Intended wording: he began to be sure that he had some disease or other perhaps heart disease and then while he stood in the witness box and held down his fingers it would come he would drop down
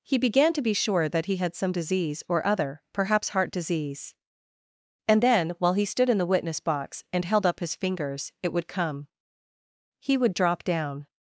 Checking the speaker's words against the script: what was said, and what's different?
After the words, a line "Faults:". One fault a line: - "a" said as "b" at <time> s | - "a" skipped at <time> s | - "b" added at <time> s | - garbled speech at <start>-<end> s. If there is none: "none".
he began to be sure that he had some disease or other perhaps heart disease and then while he stood in the witness box and held up his fingers it would come he would drop down
Faults:
- "down" said as "up" at 7.5 s